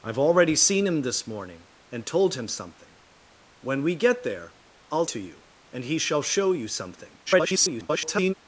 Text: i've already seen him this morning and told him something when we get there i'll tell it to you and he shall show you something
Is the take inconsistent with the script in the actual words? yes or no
yes